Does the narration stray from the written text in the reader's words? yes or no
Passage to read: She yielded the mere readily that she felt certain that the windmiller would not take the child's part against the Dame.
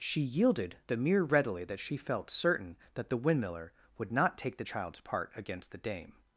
no